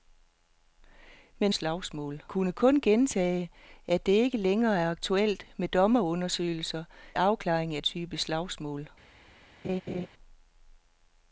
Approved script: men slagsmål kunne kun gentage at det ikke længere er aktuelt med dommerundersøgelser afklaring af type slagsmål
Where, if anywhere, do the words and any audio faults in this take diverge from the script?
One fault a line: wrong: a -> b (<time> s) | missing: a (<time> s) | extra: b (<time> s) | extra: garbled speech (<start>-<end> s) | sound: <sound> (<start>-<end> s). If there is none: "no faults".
sound: laugh (9.6-10.1 s)